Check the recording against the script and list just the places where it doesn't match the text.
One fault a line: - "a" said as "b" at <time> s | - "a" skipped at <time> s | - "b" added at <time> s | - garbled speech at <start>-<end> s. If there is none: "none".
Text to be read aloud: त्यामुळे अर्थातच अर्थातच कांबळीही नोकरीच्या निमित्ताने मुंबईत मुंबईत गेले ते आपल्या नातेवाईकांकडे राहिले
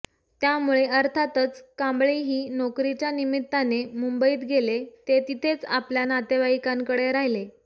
- "अर्थातच" skipped at 1.6 s
- "मुंबईत" skipped at 4.4 s
- "तिथेच" added at 5.3 s